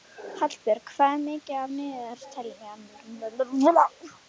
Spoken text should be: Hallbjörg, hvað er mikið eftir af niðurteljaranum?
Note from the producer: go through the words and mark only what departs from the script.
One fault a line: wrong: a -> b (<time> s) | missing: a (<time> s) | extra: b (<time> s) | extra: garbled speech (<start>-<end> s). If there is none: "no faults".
no faults